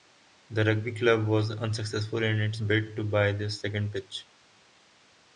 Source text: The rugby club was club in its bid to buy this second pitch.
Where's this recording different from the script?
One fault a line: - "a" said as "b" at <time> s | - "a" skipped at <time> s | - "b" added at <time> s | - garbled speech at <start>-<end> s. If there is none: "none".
- "club" said as "unsuccessful" at 1.5 s